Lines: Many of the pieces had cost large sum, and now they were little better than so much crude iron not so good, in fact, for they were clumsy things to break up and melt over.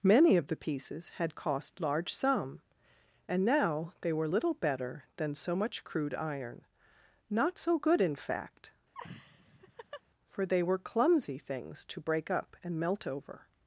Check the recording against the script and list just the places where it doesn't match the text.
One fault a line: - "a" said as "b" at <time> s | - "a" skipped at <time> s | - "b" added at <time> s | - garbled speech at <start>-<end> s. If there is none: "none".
none